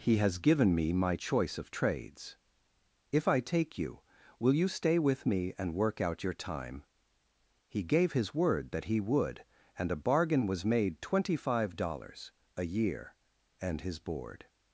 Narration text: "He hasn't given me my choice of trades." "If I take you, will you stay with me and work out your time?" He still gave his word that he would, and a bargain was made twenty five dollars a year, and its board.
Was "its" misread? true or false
true